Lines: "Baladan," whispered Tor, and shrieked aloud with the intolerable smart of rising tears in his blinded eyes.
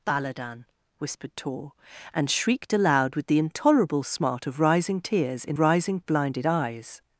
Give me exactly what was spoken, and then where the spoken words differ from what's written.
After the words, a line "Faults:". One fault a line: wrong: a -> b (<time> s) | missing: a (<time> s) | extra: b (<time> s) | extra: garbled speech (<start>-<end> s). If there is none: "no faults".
"Baladan," whispered Tor, and shrieked aloud with the intolerable smart of rising tears in rising blinded eyes.
Faults:
wrong: his -> rising (5.6 s)